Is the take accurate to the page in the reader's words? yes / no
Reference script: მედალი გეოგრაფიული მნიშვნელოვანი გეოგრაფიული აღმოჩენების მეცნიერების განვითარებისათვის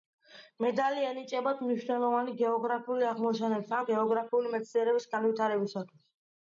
no